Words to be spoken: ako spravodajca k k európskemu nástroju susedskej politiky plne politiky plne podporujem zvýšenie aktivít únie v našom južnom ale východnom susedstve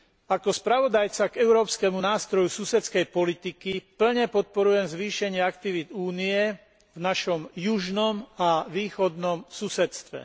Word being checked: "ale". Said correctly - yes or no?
no